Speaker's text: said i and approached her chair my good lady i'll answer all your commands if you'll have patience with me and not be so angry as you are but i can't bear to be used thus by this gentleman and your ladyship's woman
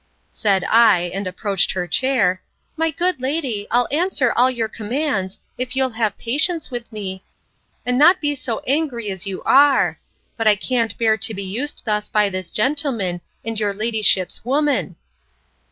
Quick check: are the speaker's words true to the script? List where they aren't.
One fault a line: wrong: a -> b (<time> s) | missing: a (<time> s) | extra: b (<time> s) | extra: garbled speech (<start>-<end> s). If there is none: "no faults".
no faults